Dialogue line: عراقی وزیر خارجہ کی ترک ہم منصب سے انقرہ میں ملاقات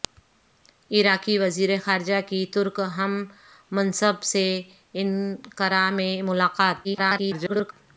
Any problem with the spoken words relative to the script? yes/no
yes